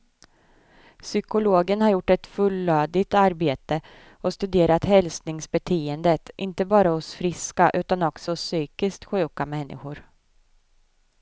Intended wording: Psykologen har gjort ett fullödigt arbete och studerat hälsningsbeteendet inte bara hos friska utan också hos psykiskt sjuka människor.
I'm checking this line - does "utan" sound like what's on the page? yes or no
yes